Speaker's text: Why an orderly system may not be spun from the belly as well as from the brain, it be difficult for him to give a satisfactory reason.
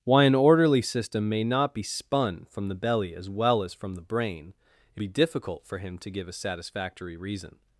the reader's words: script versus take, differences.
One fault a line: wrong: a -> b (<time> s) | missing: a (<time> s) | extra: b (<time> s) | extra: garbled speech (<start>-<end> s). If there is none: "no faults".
no faults